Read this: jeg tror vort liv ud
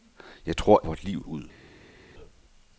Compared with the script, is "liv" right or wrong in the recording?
right